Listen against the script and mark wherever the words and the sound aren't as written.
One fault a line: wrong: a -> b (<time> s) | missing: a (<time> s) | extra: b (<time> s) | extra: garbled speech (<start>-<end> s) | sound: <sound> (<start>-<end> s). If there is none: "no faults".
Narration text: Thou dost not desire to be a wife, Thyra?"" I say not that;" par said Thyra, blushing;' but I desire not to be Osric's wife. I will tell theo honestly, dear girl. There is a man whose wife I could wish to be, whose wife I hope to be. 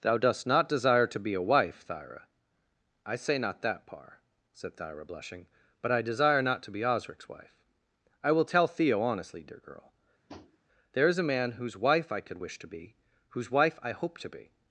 sound: tap (10.3-10.6 s)